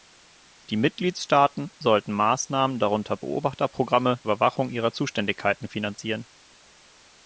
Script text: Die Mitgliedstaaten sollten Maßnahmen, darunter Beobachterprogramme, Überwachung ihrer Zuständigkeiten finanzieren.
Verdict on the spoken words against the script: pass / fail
pass